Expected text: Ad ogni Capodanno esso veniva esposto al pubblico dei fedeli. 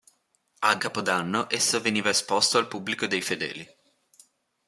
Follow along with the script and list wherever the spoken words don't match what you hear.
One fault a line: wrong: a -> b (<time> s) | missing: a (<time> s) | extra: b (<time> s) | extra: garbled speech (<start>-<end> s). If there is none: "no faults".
missing: ogni (0.8 s)